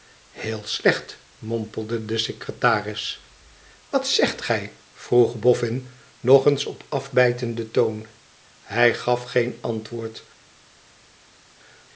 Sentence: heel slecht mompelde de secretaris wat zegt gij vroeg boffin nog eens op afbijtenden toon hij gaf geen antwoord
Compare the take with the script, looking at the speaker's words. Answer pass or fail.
pass